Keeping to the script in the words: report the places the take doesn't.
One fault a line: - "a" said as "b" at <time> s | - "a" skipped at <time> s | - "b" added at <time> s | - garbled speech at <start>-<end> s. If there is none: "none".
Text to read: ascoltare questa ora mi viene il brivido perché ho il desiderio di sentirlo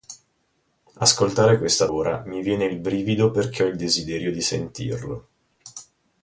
none